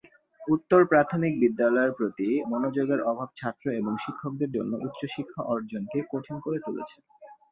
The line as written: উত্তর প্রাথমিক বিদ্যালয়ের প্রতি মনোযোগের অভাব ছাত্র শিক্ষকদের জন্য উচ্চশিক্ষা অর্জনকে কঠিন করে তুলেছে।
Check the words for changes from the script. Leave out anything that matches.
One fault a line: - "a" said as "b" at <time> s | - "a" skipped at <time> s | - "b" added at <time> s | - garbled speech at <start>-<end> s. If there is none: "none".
- "এবং" added at 3.7 s